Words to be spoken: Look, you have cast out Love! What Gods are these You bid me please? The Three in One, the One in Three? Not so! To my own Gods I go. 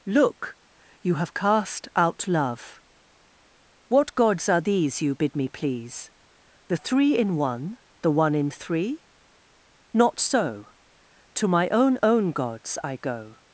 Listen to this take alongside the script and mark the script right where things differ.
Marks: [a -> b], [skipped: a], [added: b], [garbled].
Look, you have cast out Love! What Gods are these You bid me please? The Three in One, the One in Three? Not so! To my own [added: own] Gods I go.